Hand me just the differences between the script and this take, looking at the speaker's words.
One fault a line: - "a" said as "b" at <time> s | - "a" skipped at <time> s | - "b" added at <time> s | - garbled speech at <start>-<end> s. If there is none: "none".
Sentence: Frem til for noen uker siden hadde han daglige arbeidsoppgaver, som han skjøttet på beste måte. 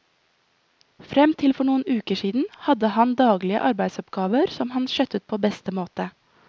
none